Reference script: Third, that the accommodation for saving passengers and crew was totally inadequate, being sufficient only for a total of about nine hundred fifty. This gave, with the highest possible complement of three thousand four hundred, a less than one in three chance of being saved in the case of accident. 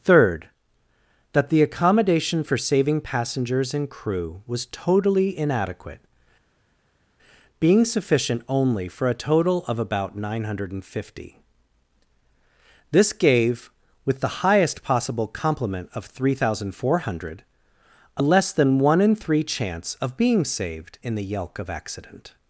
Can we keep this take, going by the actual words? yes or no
no